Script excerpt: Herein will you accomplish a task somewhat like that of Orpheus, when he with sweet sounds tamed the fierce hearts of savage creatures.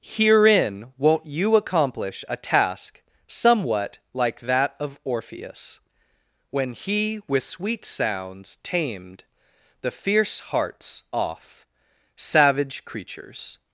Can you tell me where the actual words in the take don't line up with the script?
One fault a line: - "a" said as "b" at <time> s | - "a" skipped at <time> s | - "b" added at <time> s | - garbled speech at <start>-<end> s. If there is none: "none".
- "will" said as "won't" at 1.0 s
- "of" said as "off" at 11.1 s